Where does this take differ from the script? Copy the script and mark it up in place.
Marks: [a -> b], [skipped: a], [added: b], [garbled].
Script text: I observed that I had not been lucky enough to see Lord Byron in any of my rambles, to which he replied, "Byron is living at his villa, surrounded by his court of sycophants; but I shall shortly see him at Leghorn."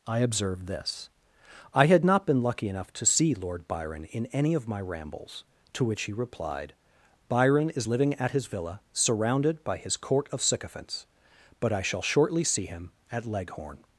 I observed [that -> this] I had not been lucky enough to see Lord Byron in any of my rambles, to which he replied, "Byron is living at his villa, surrounded by his court of sycophants; but I shall shortly see him at Leghorn."